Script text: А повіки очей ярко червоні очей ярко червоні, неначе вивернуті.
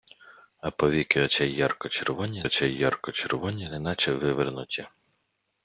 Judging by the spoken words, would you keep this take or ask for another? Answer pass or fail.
pass